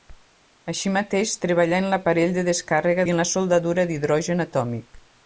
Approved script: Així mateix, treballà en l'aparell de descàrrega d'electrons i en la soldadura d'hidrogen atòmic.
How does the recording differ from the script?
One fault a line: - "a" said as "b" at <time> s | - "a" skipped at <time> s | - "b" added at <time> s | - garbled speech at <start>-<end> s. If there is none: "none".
- "d'electrons" skipped at 3.0 s